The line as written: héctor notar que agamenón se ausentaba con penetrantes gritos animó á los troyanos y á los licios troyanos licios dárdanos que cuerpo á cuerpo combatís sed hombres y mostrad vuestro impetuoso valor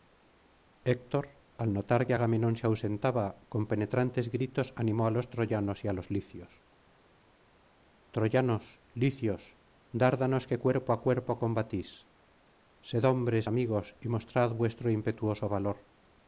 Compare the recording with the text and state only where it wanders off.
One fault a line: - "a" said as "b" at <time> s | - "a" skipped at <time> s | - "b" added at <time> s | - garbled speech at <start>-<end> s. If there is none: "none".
- "al" added at 1.6 s
- "amigos" added at 13.5 s